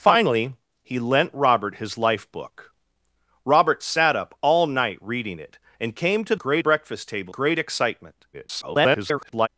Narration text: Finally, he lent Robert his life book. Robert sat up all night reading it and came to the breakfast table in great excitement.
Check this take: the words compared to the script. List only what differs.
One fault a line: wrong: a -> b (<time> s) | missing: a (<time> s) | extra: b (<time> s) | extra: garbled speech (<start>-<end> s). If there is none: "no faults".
wrong: the -> great (6.3 s)
missing: in (7.3 s)
extra: garbled speech (8.3-9.5 s)